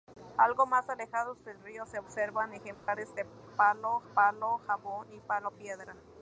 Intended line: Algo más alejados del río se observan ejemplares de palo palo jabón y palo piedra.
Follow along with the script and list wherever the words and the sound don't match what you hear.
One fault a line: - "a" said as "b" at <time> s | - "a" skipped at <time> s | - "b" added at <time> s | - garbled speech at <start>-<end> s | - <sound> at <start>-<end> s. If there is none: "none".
- dropout at 2.7-2.9 s